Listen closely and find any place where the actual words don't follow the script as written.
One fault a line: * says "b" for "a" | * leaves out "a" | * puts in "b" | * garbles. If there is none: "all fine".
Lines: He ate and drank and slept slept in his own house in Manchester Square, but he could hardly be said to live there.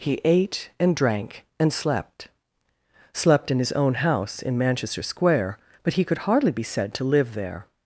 all fine